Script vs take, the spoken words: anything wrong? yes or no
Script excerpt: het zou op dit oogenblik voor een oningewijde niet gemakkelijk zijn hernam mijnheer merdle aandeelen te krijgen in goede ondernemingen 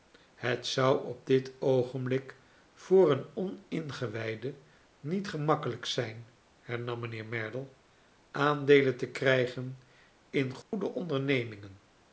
no